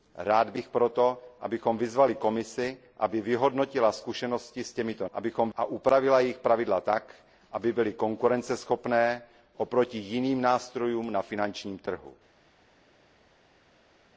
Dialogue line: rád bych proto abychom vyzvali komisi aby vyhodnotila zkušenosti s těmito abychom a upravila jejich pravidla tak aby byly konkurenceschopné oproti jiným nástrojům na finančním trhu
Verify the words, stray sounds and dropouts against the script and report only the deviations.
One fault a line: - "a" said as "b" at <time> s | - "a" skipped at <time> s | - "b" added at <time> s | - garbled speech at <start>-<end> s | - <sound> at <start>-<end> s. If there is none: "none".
none